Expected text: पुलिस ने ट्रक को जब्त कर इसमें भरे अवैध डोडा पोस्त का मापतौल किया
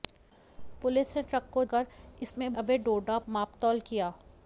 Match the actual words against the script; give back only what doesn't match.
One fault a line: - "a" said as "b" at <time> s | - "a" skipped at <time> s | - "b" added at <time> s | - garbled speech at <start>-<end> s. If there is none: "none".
- "जब्त" skipped at 1.6 s
- "भरे" skipped at 2.5 s
- "पोस्त का" skipped at 3.2 s